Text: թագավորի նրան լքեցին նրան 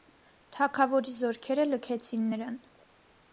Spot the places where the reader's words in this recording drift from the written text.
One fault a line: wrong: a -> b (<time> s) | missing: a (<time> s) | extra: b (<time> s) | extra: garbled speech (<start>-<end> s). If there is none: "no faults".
wrong: նրան -> զորքերը (1.2 s)